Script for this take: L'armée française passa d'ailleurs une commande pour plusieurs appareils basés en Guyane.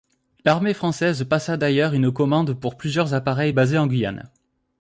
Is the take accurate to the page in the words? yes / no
yes